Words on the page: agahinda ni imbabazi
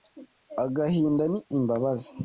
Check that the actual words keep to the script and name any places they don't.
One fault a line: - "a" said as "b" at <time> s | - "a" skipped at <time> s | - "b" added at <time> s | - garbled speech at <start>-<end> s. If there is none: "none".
none